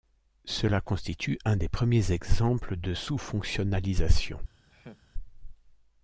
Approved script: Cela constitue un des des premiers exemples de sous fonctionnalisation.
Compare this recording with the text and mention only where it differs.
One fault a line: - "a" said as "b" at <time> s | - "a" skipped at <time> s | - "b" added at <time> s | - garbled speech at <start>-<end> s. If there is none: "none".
- "des" skipped at 1.7 s